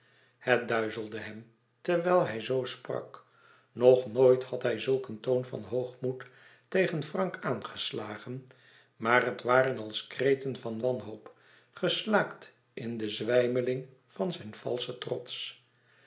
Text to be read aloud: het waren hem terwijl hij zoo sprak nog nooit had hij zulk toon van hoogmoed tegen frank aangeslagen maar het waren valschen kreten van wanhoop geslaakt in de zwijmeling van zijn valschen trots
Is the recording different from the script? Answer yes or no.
yes